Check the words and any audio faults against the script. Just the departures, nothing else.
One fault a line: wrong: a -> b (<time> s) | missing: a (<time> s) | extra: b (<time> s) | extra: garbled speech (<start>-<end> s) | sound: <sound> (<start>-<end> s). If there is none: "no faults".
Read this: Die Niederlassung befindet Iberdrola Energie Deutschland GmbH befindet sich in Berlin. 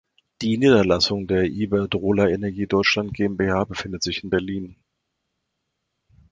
wrong: befindet -> der (1.3 s)